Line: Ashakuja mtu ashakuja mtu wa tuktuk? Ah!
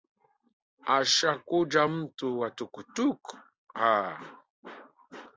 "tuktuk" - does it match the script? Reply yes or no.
yes